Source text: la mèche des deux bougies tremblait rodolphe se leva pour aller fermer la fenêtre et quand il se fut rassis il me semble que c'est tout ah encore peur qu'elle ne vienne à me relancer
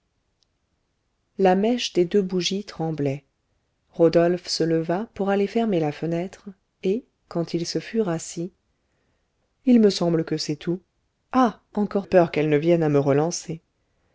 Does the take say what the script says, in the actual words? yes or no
yes